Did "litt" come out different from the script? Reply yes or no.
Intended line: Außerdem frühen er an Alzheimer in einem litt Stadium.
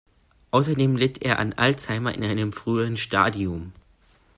yes